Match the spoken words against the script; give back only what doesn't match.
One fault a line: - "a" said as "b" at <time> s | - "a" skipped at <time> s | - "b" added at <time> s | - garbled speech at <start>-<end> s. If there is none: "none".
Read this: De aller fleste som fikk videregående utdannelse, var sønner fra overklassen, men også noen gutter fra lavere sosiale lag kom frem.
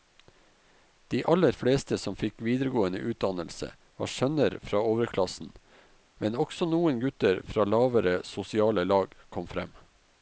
none